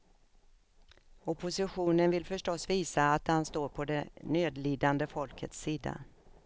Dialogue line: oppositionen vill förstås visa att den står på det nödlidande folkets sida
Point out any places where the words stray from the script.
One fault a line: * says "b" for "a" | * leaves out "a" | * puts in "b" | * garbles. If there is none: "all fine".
all fine